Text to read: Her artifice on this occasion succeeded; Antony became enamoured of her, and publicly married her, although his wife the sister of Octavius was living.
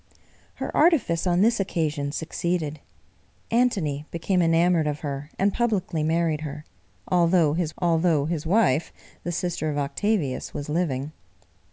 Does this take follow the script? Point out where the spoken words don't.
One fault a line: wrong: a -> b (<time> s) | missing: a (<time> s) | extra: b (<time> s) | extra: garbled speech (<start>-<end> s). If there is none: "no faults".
extra: although his (7.8 s)